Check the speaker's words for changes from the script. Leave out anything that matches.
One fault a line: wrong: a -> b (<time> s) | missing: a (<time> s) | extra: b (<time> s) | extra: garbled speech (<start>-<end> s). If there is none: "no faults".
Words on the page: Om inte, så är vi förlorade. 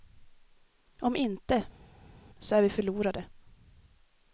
no faults